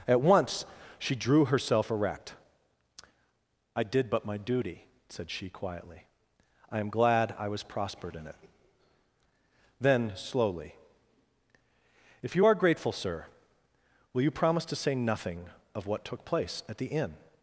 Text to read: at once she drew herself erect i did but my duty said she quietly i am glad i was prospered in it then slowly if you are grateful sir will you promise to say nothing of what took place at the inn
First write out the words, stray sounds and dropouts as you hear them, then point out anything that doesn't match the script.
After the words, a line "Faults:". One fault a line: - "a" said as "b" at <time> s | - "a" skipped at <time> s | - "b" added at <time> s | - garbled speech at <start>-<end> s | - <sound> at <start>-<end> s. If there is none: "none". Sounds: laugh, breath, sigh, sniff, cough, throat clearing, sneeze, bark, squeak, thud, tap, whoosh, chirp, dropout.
at once she drew herself erect i did but my duty said she quietly i am glad i was prospered in it then slowly if you are grateful sir will you promise to say nothing of what took place at the inn
Faults:
none